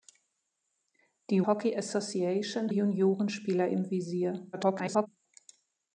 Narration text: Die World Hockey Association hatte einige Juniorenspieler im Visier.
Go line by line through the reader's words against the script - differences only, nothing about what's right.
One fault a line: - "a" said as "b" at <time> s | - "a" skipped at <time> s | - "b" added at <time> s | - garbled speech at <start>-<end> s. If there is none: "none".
- "World" skipped at 1.4 s
- "hatte einige" skipped at 2.7 s
- garbled speech at 4.5-5.1 s